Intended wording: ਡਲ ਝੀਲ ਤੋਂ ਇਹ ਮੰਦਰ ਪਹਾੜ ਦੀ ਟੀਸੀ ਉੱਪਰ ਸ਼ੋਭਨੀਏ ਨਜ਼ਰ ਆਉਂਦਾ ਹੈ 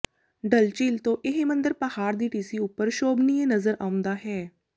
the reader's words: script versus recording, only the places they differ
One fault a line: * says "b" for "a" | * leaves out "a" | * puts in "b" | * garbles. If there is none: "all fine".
all fine